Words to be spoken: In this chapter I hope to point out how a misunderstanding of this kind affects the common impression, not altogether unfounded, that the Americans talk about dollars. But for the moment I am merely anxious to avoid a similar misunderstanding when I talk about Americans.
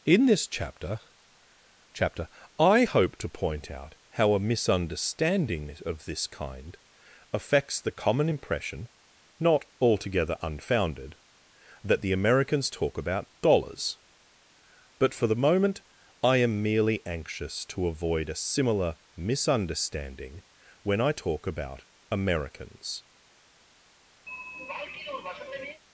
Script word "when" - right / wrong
right